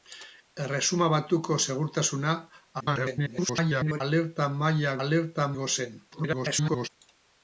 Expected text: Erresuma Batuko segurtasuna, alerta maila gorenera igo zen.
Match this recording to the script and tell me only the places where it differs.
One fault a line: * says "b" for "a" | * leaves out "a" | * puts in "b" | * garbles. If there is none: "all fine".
* garbles
* says "alerta" for "gorenera"
* garbles